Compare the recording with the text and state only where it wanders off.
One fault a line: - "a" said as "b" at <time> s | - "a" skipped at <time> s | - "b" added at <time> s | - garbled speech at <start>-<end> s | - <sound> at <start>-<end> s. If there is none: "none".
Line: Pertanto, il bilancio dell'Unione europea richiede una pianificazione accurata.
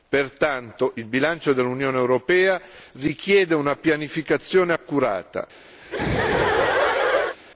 - laugh at 5.8-7.4 s